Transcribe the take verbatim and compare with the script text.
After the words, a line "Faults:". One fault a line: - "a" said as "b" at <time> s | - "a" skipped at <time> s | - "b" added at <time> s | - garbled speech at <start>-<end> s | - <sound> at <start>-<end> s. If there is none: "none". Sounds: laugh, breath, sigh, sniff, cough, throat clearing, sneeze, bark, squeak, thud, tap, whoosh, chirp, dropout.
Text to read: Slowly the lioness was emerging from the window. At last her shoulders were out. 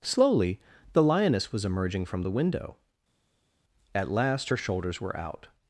Slowly the lioness was emerging from the window. At last her shoulders were out.
Faults:
none